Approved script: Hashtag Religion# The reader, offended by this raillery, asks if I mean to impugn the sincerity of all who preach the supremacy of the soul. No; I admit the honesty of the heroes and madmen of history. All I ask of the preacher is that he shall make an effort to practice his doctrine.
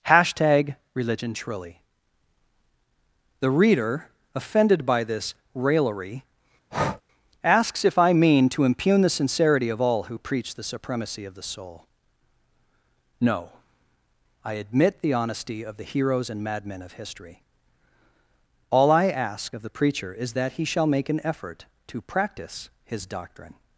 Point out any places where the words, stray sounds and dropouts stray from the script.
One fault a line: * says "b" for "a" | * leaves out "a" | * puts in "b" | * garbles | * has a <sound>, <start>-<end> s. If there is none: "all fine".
* puts in "truly"
* has a breath, 6.7-7.0 s